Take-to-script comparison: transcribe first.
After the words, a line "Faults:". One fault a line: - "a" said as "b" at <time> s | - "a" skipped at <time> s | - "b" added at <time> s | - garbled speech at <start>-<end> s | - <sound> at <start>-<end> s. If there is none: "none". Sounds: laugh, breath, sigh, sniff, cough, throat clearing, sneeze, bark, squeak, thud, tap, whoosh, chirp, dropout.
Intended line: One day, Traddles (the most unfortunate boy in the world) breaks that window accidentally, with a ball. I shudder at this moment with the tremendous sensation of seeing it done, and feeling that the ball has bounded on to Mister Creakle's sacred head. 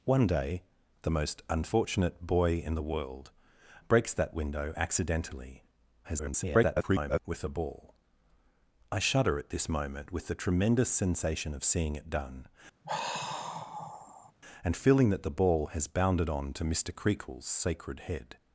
One day, (The most unfortunate boy in the world) breaks that window accidentally, [garbled] with a ball. I shudder at this moment with the tremendous sensation of seeing it done, and feeling that the ball has bounded on to Mister Creakle's sacred head.
Faults:
- "Traddles" skipped at 0.6 s
- garbled speech at 6.0-7.2 s
- sigh at 12.8-14.3 s